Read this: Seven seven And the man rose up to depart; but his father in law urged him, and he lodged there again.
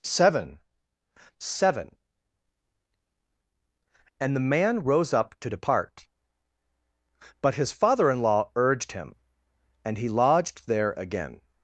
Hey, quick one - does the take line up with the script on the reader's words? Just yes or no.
yes